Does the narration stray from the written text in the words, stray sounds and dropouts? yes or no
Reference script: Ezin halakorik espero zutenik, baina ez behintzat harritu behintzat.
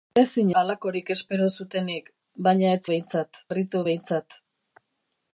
no